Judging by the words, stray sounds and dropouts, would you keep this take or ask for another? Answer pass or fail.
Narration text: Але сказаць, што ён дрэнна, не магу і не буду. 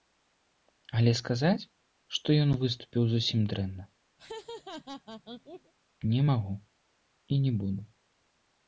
fail